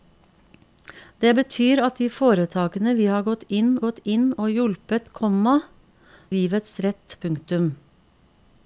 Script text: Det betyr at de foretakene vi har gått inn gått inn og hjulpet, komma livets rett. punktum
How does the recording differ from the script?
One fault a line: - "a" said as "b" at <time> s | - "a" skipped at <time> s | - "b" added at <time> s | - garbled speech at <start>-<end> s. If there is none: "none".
none